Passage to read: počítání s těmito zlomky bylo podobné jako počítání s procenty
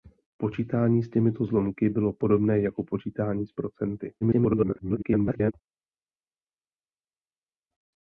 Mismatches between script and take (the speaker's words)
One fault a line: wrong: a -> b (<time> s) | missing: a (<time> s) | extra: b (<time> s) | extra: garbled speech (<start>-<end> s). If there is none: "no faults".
extra: garbled speech (4.2-5.5 s)